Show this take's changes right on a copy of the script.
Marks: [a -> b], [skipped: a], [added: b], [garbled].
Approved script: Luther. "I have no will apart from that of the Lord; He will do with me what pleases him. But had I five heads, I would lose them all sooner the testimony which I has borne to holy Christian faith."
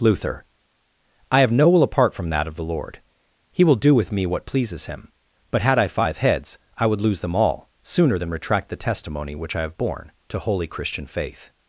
Luther. "I have no will apart from that of the Lord; He will do with me what pleases him. But had I five heads, I would lose them all sooner [added: than retract] the testimony which I [has -> have] borne to holy Christian faith."